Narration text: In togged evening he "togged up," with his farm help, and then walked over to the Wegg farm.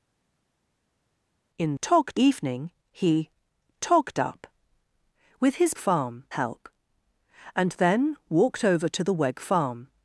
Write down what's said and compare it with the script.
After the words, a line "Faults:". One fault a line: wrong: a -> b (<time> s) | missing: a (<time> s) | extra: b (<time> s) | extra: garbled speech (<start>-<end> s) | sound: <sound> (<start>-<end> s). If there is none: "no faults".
In togged evening he "togged up," with his farm help, and then walked over to the Wegg farm.
Faults:
no faults